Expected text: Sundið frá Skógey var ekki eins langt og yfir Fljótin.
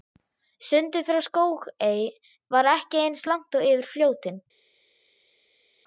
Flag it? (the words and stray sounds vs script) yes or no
no